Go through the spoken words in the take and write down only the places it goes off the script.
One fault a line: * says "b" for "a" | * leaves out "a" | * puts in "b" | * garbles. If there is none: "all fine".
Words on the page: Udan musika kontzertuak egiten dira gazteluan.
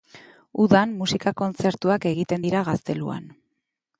all fine